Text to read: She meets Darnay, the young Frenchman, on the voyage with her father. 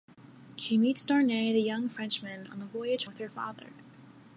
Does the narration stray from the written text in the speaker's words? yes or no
no